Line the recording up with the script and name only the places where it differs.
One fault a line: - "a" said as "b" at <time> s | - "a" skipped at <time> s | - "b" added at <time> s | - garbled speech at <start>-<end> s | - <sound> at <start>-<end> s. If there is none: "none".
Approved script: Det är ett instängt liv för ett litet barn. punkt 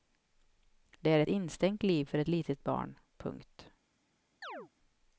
- chirp at 4.4-4.7 s